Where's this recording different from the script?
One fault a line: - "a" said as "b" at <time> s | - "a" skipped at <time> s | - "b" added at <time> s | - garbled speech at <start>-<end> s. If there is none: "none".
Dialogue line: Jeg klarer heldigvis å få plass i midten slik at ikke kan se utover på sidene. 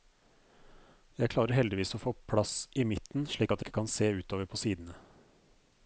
none